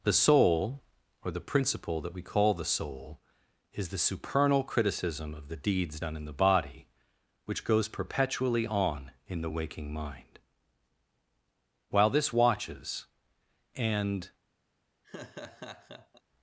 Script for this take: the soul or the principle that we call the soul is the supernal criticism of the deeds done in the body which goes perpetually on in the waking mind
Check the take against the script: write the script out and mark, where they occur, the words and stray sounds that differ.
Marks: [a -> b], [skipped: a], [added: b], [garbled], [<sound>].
the soul or the principle that we call the soul is the supernal criticism of the deeds done in the body which goes perpetually on in the waking mind [added: while this watches and] [laugh]